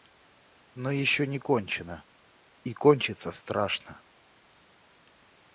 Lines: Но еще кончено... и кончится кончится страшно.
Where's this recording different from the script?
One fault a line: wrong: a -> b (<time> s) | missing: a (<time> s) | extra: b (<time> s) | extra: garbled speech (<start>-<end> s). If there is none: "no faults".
extra: не (1.3 s)
missing: кончится (3.3 s)